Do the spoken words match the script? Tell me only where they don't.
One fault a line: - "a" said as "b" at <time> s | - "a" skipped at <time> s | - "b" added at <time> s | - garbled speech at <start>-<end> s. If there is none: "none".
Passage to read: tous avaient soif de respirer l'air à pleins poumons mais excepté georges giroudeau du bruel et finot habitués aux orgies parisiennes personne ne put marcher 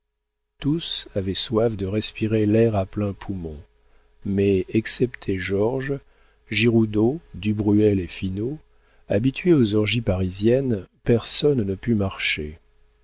none